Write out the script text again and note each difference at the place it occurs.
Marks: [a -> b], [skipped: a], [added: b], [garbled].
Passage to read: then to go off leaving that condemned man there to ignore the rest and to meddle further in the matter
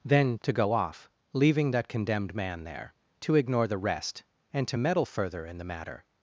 then to go off leaving that condemned man there to ignore the rest and to meddle further in the matter